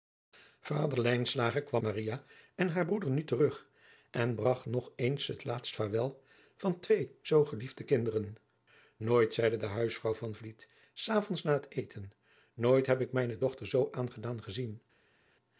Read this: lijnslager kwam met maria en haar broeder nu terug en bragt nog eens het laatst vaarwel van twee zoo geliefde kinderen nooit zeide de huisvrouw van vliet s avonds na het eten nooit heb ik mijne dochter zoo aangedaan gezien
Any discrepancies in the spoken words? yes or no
yes